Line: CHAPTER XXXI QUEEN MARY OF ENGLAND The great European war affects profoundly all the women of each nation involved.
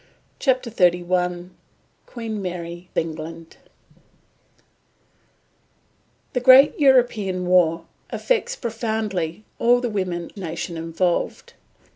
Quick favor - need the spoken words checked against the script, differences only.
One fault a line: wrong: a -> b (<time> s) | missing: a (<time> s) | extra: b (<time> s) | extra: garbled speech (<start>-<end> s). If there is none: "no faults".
missing: OF (2.9 s)
missing: of each (10.3 s)